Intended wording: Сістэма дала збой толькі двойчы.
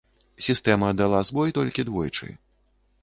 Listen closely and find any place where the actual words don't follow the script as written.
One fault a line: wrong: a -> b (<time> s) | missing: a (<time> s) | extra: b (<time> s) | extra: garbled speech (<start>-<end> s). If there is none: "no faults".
no faults